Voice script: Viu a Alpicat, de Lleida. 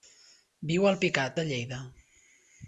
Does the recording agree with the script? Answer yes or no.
yes